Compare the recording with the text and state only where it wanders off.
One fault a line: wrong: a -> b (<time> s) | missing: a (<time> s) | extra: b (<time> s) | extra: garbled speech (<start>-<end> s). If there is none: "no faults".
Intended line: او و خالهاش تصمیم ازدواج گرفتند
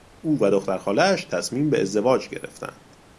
extra: دختر (0.5 s)
extra: به (1.7 s)